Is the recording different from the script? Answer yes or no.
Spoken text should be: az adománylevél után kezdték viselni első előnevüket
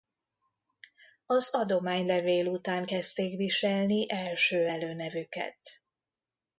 no